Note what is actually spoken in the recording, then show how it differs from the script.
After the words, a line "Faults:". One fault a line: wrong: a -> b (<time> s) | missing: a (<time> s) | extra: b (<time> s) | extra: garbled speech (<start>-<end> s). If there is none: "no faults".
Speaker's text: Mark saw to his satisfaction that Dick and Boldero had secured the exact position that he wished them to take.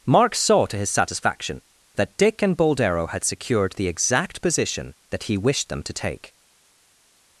Mark saw to his satisfaction that Dick and Boldero had secured the exact position that he wished them to take.
Faults:
no faults